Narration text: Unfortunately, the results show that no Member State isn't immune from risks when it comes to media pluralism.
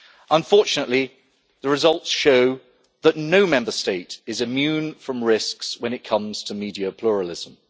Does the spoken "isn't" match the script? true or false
false